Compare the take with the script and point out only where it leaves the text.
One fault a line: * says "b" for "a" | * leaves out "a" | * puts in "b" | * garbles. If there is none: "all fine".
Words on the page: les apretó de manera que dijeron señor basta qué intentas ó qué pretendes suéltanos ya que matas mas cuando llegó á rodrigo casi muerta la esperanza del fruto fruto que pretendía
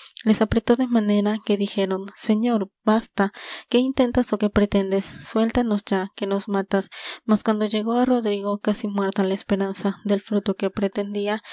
* puts in "nos"
* leaves out "fruto"